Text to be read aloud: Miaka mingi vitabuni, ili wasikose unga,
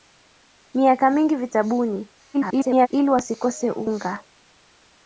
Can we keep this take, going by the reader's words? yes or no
no